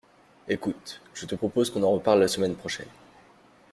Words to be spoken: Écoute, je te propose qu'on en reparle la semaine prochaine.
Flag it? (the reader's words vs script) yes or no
no